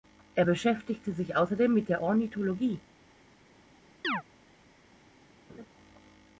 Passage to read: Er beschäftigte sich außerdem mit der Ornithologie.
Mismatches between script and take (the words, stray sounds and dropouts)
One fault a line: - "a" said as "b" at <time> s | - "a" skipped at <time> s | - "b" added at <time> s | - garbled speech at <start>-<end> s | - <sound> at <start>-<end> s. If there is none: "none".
- chirp at 4.0-4.2 s
- laugh at 5.5-5.7 s